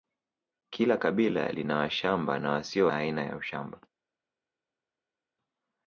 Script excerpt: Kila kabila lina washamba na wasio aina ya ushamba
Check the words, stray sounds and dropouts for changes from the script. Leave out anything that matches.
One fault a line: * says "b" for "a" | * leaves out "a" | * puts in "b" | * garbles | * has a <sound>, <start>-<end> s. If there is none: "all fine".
all fine